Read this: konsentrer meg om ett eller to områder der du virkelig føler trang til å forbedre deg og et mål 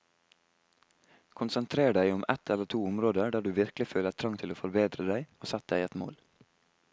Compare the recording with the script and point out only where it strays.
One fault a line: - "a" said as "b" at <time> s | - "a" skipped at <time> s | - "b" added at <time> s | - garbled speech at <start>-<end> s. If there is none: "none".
- "meg" said as "deg" at 1.9 s
- "sett deg" added at 5.5 s